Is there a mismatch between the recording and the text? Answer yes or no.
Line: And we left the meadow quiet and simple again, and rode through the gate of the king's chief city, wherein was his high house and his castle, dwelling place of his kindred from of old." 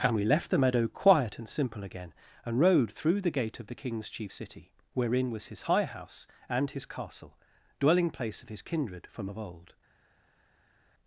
no